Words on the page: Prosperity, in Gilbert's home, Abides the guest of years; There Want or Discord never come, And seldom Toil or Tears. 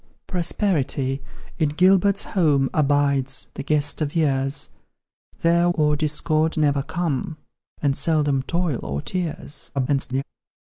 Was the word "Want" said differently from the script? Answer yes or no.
yes